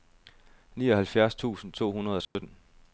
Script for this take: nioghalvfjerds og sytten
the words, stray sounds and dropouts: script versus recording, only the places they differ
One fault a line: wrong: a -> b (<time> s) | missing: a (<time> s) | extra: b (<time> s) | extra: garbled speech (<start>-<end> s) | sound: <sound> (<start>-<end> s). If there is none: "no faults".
extra: tusind to hundrede (1.4 s)
sound: dropout (2.2-2.4 s)